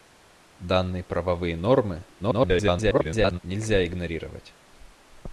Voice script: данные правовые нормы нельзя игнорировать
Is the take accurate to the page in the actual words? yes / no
no